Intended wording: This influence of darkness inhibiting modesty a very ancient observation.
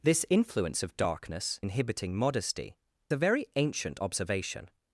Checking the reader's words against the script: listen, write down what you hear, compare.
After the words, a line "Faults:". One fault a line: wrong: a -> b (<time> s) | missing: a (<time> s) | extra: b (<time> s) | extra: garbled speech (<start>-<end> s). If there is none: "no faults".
This influence of darkness inhibiting modesty a very ancient observation.
Faults:
no faults